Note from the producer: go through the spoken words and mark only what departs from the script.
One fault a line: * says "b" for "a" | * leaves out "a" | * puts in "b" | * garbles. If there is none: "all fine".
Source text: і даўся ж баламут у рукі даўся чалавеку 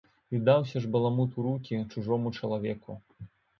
* says "чужому" for "даўся"